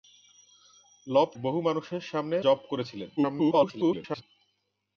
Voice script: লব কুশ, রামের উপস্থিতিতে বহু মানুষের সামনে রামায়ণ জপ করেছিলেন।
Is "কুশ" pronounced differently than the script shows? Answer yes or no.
yes